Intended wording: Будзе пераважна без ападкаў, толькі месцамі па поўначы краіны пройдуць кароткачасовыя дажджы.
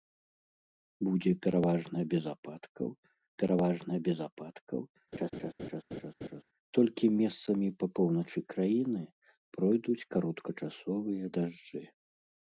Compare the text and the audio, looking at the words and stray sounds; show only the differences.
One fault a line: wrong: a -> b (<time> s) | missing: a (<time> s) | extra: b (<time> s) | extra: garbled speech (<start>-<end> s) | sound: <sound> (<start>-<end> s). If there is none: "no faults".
extra: пераважна без ападкаў (3.4 s)
sound: laugh (5.1-6.4 s)